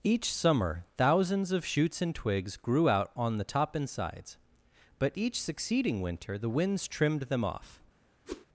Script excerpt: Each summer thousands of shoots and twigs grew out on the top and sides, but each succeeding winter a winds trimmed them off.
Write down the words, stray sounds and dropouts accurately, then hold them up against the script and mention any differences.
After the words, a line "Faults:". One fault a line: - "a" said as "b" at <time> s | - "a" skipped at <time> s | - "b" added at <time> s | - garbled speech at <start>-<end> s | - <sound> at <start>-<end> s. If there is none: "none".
Each summer thousands of shoots and twigs grew out on the top and sides, but each succeeding winter the winds trimmed them off.
Faults:
- "a" said as "the" at 6.4 s
- whoosh at 8.3-8.5 s